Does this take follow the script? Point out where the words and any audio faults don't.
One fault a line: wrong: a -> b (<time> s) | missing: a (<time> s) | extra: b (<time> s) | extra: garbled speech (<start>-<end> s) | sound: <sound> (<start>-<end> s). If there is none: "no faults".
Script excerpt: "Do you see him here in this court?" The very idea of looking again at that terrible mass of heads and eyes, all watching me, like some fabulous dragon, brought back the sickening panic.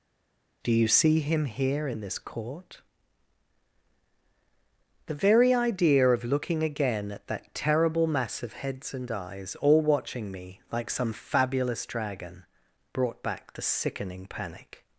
no faults